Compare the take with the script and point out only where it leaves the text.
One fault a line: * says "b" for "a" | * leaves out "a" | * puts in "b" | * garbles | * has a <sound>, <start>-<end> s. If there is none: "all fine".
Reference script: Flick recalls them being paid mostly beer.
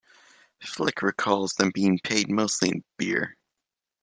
* puts in "in"